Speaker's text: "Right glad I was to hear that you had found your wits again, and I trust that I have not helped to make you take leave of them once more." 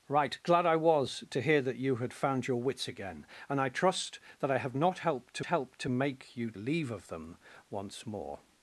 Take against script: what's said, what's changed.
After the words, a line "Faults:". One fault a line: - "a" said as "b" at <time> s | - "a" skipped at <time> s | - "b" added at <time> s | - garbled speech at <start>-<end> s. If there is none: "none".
"Right glad I was to hear that you had found your wits again, and I trust that I have not helped to helped to make you leave of them once more."
Faults:
- "helped to" added at 5.5 s
- "take" skipped at 6.5 s